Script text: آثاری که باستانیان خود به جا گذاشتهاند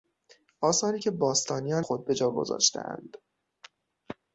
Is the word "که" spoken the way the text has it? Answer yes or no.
yes